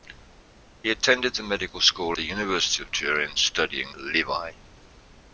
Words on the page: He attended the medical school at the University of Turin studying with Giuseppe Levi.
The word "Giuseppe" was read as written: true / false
false